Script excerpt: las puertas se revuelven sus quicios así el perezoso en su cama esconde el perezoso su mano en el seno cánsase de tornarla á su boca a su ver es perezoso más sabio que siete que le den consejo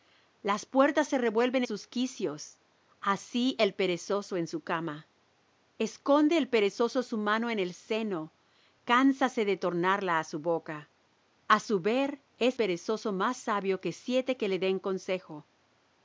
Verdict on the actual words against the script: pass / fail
pass